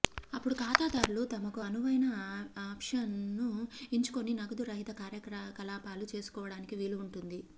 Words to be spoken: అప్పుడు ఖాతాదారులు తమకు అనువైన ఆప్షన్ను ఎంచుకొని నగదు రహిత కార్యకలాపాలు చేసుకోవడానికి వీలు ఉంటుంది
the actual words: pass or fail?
pass